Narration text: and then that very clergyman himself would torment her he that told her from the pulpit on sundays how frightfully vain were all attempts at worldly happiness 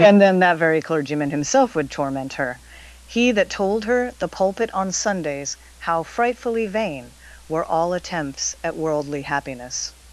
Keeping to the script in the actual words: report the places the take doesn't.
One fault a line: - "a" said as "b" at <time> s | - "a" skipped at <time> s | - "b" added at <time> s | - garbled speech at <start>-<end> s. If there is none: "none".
- "from" skipped at 4.1 s